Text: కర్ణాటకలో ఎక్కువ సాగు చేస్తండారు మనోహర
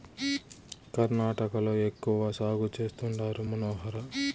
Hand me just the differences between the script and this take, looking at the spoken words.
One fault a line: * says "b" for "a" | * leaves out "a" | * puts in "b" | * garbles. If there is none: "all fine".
all fine